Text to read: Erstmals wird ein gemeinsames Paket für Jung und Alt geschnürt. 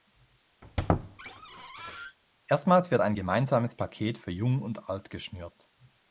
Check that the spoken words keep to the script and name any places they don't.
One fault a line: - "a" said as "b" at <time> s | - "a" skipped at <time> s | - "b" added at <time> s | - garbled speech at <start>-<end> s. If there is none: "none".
none